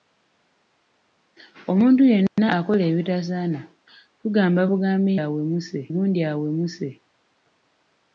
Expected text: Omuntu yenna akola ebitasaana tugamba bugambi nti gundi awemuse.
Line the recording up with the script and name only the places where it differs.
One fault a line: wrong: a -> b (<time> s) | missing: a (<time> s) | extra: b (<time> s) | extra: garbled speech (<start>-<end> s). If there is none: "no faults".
wrong: nti -> awemuse (5.2 s)